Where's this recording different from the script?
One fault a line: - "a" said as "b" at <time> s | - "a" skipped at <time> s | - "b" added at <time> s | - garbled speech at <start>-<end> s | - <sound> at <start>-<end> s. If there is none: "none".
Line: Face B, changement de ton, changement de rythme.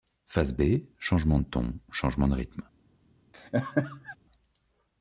- laugh at 3.3-4.2 s